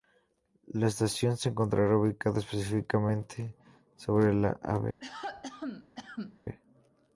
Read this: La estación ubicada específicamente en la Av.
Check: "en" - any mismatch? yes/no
yes